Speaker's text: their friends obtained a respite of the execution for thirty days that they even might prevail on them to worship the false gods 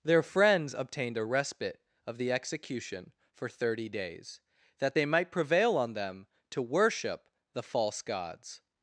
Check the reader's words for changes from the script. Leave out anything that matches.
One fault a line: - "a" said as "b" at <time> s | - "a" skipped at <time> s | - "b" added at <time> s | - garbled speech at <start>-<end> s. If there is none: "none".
- "even" skipped at 5.0 s